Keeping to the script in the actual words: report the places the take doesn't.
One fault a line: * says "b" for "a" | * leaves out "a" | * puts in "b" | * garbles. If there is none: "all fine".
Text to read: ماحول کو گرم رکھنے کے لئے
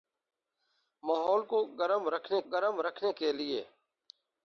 * puts in "گرم رکھنے"